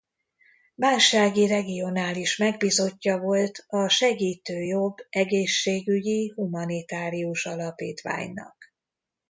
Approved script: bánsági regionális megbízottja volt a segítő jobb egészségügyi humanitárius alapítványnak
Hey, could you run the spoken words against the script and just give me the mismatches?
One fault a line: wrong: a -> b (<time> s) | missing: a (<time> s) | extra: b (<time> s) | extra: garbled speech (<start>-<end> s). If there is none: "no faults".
no faults